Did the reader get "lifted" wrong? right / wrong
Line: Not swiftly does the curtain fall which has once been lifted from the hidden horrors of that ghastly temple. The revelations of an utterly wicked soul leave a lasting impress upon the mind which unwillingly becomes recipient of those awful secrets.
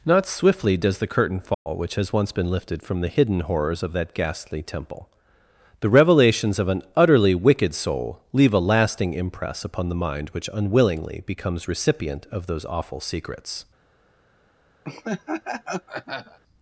right